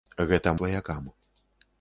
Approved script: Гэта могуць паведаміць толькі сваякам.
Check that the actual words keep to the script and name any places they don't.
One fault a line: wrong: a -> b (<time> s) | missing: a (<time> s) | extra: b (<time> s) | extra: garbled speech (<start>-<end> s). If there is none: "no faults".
missing: могуць паведаміць толькі (0.5 s)